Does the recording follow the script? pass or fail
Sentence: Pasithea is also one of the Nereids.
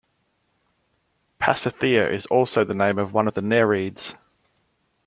fail